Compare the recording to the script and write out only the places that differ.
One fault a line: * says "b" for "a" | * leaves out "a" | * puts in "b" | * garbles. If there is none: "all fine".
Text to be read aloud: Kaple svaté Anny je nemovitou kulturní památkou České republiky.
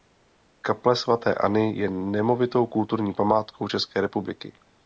all fine